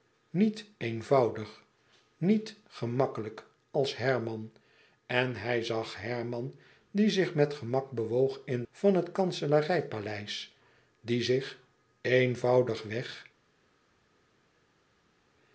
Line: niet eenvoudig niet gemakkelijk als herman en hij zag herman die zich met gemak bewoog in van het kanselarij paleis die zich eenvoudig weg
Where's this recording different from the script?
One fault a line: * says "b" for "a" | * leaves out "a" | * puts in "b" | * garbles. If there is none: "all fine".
all fine